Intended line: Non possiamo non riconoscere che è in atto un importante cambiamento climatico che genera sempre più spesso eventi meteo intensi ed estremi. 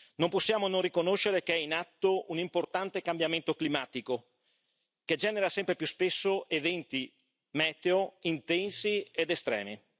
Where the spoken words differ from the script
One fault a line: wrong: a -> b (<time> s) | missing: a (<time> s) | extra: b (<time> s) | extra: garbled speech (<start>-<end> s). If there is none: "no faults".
no faults